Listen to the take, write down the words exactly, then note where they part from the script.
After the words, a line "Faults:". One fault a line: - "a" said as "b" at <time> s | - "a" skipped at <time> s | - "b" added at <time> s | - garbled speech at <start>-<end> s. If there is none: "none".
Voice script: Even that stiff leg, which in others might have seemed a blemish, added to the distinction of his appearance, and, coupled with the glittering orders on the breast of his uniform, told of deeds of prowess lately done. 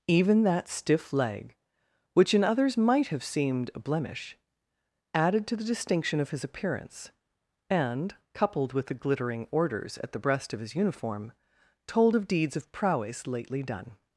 Even that stiff leg, which in others might have seemed a blemish, added to the distinction of his appearance, and, coupled with the glittering orders at the breast of his uniform, told of deeds of prowess lately done.
Faults:
- "on" said as "at" at 10.0 s